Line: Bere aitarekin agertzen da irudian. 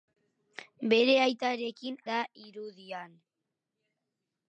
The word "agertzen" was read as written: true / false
false